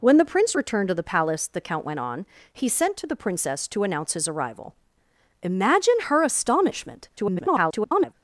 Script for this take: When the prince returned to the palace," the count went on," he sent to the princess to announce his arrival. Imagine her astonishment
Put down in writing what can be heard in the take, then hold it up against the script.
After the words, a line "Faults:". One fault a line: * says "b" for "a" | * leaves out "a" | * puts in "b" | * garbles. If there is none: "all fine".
When the prince returned to the palace," the count went on," he sent to the princess to announce his arrival. Imagine her astonishment [garbled]
Faults:
* garbles